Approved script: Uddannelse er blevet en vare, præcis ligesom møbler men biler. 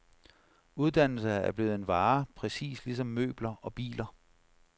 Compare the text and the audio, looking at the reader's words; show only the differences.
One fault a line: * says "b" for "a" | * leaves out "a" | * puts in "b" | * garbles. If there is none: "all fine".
* says "og" for "men"